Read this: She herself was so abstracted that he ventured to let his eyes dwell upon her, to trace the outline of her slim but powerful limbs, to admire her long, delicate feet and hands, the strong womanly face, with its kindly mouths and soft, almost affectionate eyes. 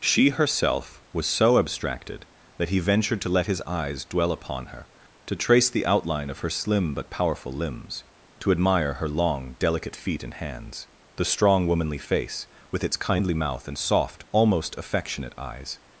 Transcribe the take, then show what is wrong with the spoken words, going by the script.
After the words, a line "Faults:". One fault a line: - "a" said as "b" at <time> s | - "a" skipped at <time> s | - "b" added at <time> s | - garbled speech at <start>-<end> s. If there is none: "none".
She herself was so abstracted that he ventured to let his eyes dwell upon her, to trace the outline of her slim but powerful limbs, to admire her long, delicate feet and hands, the strong womanly face, with its kindly mouth and soft, almost affectionate eyes.
Faults:
- "mouths" said as "mouth" at 13.3 s